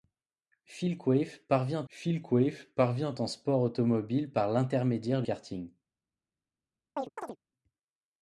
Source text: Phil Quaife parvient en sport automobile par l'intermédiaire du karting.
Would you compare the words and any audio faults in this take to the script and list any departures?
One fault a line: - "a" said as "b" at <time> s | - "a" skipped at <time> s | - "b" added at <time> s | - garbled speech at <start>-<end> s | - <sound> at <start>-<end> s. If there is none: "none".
- "phil Quaife parvient" added at 1.9 s
- "du" skipped at 5.2 s
- chirp at 7.0-7.4 s